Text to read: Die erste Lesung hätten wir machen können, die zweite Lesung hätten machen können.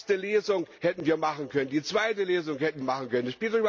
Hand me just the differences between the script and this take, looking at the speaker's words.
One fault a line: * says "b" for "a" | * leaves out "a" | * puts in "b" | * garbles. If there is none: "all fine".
all fine